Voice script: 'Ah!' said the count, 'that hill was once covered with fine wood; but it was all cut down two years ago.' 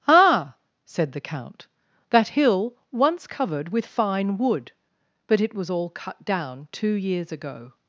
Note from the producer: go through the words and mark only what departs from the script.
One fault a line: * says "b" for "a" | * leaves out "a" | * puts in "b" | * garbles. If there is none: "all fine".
* leaves out "was"